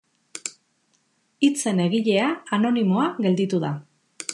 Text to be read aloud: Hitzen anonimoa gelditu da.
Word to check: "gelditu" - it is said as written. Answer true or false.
true